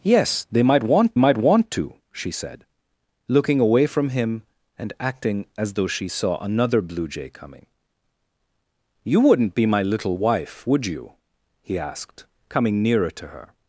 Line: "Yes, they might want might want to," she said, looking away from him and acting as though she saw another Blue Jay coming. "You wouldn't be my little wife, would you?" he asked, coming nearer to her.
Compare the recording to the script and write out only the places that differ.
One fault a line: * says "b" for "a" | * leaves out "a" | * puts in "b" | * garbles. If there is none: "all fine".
all fine